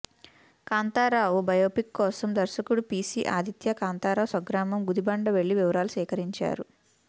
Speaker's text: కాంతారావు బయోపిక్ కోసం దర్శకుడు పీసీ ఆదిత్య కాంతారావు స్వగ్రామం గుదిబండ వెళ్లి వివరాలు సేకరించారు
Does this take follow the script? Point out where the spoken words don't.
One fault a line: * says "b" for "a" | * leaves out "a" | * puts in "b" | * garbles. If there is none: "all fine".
all fine